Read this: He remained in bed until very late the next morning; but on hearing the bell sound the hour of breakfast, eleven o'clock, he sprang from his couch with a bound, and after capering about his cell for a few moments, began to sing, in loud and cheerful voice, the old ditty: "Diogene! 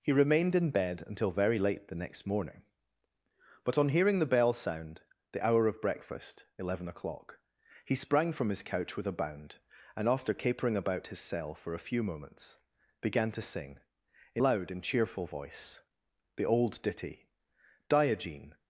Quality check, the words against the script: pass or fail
pass